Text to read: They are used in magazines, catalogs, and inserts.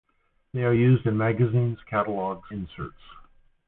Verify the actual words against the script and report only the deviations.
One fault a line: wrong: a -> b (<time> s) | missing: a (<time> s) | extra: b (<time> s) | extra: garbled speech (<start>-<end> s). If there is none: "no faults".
missing: and (2.5 s)